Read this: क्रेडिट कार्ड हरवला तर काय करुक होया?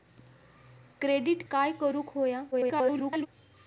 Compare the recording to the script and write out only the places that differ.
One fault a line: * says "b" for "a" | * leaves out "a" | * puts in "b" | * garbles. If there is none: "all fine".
* leaves out "कार्ड हरवला तर"
* garbles